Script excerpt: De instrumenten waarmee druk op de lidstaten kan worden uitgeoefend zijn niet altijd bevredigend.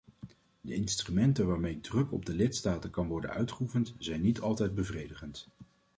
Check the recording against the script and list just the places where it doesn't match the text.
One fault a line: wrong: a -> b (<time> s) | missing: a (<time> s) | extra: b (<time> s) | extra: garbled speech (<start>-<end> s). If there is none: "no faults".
no faults